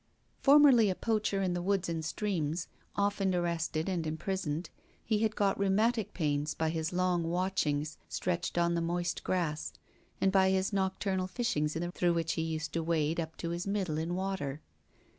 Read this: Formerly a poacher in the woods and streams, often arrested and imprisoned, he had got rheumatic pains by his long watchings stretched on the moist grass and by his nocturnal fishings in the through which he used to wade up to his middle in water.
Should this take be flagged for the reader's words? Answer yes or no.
no